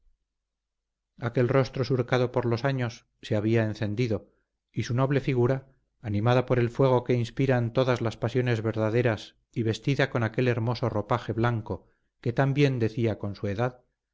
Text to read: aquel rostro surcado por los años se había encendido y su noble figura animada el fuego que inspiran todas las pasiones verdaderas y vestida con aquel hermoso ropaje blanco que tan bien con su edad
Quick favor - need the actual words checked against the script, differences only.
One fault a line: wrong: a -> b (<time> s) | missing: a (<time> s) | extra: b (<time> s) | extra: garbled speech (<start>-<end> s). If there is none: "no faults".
extra: por (6.5 s)
extra: decía (12.8 s)